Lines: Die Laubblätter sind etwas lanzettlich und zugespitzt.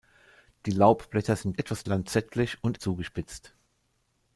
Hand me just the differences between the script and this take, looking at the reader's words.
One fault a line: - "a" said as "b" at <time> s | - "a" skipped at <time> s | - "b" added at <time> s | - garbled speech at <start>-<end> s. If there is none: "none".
none